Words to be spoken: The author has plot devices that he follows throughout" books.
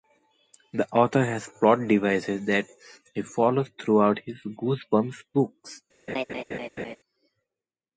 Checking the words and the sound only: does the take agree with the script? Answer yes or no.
no